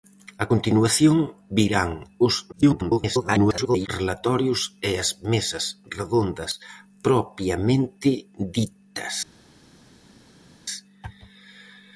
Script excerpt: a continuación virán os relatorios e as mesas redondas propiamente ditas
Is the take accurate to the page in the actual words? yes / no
no